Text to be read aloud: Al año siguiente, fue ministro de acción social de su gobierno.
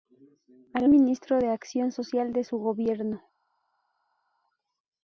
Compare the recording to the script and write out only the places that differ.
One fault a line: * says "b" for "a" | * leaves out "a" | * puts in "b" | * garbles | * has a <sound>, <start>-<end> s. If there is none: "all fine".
* leaves out "año siguiente fue"